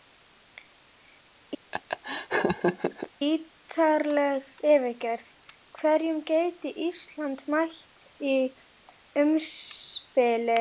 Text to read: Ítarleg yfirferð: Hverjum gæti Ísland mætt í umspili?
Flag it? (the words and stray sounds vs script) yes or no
yes